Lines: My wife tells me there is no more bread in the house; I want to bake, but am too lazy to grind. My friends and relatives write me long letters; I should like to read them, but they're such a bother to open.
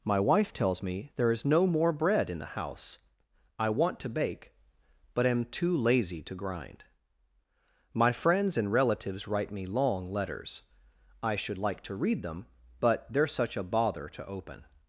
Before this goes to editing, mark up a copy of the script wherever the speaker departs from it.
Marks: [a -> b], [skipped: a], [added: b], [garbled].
My wife tells me there is no more bread in the house; I want to bake, but am too lazy to grind. My friends and relatives write me long letters; I should like to read them, but they're such a bother to open.